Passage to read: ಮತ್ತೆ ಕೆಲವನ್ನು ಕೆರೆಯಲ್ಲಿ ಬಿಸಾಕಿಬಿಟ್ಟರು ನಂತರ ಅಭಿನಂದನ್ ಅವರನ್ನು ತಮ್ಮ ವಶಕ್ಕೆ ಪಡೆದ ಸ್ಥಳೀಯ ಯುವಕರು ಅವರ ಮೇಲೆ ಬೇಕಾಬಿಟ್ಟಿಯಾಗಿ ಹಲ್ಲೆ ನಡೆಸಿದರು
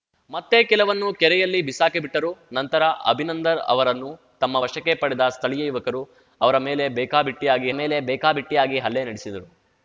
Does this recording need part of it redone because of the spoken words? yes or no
yes